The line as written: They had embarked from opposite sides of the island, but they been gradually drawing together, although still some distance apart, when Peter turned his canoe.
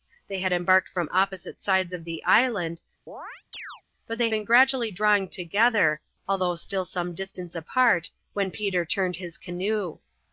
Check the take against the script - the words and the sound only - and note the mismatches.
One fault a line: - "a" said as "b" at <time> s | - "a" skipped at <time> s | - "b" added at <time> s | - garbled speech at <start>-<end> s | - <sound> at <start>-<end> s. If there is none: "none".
- chirp at 3.1-3.8 s